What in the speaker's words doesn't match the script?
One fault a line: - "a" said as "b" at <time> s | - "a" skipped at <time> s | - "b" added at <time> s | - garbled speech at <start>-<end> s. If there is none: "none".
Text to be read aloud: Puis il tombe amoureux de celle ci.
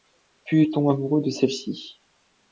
none